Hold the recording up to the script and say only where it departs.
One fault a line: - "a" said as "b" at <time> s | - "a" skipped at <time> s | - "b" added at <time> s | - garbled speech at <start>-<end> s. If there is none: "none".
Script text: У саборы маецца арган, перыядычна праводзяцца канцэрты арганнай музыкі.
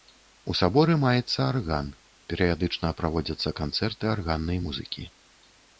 none